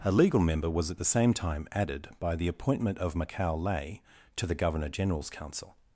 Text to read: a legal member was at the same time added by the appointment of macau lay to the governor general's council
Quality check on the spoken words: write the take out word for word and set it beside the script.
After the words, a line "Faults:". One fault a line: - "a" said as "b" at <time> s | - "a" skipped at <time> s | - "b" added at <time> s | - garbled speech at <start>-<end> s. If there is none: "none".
a legal member was at the same time added by the appointment of macau lay to the governor general's council
Faults:
none